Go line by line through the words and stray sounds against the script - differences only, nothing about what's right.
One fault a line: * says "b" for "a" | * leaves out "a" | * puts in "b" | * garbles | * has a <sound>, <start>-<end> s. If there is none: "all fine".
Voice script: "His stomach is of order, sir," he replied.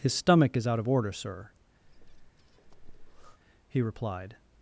* puts in "out"
* has a breath, 1.8-3.4 s